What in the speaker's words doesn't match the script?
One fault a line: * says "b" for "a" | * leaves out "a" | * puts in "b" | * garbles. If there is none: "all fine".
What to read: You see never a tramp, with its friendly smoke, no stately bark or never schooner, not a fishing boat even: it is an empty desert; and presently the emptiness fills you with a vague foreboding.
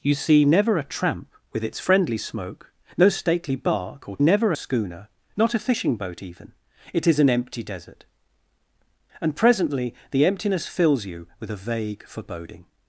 all fine